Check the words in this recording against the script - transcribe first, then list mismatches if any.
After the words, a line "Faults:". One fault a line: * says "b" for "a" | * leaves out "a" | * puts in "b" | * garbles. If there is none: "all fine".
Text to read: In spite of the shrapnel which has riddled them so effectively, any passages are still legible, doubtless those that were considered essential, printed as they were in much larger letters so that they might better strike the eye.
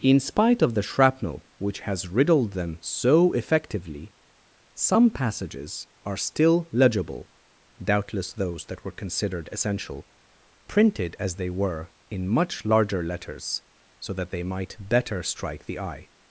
In spite of the shrapnel which has riddled them so effectively, some passages are still legible, doubtless those that were considered essential, printed as they were in much larger letters so that they might better strike the eye.
Faults:
* says "some" for "any"